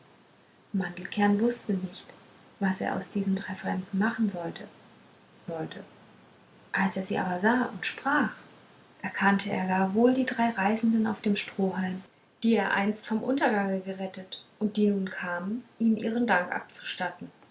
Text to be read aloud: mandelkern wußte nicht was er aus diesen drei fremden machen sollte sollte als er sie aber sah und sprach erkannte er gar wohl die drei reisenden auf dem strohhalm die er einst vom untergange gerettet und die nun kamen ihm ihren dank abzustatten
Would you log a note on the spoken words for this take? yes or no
no